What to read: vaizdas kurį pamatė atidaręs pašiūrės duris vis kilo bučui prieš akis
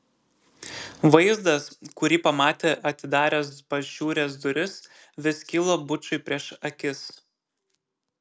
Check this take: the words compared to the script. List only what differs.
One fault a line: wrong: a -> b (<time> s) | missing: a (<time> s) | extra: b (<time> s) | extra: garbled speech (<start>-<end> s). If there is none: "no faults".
no faults